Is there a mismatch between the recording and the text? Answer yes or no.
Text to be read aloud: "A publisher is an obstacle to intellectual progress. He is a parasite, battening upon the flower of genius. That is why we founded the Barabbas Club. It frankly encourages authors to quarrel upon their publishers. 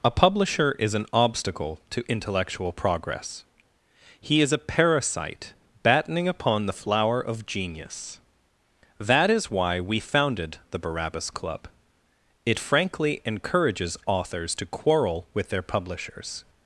yes